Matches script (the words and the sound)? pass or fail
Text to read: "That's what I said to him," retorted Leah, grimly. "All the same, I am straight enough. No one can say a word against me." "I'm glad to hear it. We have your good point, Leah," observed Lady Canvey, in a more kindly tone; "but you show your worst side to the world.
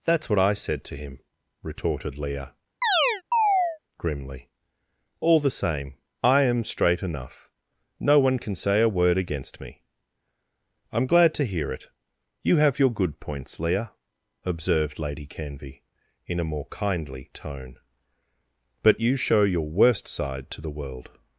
fail